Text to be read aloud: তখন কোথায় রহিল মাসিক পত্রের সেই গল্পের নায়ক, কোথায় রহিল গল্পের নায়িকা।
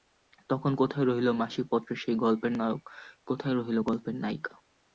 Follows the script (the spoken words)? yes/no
yes